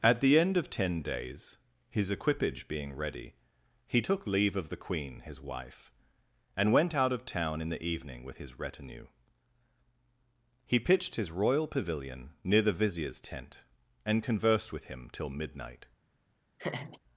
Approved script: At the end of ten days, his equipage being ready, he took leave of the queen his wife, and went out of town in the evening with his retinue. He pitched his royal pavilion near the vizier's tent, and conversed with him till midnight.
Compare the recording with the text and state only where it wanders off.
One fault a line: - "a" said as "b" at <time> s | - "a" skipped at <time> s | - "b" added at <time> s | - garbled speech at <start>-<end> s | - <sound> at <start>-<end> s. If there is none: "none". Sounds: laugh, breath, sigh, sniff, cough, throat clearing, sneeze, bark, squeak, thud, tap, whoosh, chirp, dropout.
- laugh at 16.6-17.0 s